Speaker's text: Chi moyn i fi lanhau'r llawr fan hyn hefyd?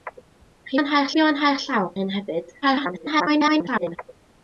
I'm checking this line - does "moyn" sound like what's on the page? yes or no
no